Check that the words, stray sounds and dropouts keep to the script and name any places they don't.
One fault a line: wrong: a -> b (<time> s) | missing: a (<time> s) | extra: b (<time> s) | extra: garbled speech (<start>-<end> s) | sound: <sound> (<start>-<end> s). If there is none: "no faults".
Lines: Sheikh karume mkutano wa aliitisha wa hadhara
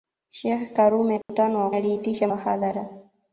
sound: dropout (1.2-1.3 s)